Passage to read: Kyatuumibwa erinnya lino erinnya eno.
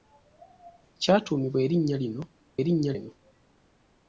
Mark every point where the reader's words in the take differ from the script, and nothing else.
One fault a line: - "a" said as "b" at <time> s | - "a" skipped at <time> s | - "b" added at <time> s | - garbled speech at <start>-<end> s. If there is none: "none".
none